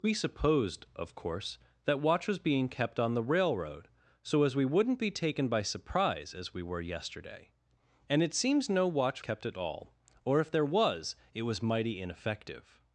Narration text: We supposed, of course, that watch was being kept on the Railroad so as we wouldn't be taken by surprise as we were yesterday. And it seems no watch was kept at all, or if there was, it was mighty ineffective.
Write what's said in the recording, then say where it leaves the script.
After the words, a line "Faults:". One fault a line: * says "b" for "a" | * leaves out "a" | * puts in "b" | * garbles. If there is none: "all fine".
We supposed, of course, that watch was being kept on the Railroad so as we wouldn't be taken by surprise as we were yesterday. And it seems no watch kept at all, or if there was, it was mighty ineffective.
Faults:
* leaves out "was"